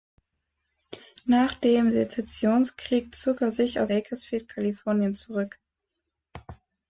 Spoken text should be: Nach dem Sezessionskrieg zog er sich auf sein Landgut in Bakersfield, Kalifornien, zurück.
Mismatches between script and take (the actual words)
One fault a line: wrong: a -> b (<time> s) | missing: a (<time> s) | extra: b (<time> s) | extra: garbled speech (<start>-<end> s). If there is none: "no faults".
missing: sein Landgut in (3.9 s)